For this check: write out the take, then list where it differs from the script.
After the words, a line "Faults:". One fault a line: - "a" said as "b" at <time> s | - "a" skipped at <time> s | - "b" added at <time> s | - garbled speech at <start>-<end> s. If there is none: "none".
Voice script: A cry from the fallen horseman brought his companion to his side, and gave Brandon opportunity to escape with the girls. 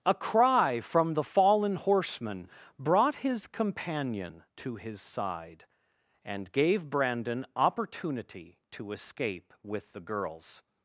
A cry from the fallen horseman brought his companion to his side, and gave Brandon opportunity to escape with the girls.
Faults:
none